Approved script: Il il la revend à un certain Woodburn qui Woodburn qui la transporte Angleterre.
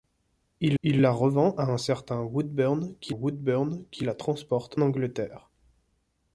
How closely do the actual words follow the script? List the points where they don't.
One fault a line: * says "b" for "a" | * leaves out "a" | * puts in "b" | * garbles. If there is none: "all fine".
all fine